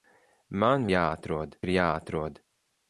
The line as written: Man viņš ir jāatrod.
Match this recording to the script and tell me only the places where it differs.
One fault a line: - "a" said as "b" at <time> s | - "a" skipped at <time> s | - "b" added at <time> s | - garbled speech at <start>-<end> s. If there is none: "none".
- "viņš" said as "jāatrod" at 0.9 s